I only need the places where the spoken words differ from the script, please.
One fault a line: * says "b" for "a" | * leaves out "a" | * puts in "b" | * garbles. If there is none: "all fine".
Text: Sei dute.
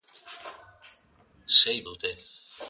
all fine